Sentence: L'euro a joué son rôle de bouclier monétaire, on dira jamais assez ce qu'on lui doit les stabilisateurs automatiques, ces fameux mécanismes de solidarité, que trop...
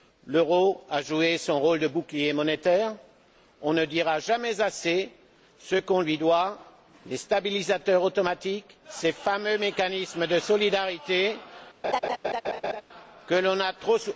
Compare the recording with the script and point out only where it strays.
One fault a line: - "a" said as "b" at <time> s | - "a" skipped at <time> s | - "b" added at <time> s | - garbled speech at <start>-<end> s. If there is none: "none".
- "ne" added at 3.7 s
- "l'on a" added at 13.4 s